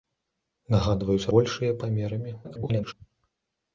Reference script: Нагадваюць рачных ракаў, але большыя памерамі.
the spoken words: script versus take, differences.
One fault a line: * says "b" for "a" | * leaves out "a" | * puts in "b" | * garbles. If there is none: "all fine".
* leaves out "рачных ракаў але"
* garbles